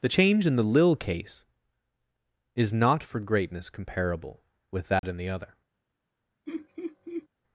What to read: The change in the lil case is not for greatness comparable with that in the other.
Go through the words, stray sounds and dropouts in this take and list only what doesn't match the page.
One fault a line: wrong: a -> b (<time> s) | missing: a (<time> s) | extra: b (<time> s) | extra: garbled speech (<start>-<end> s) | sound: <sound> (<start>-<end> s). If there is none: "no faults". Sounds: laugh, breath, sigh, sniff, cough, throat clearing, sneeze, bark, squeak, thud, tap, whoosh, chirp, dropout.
sound: dropout (5.0-5.0 s)
sound: laugh (6.5-7.3 s)